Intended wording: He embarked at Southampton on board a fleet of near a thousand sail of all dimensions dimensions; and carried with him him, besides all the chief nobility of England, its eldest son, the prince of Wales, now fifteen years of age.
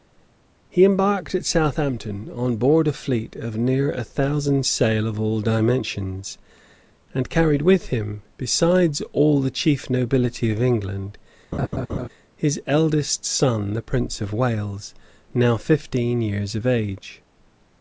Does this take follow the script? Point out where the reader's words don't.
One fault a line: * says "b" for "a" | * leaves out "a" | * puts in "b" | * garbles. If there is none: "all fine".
* leaves out "dimensions"
* leaves out "him"
* says "his" for "its"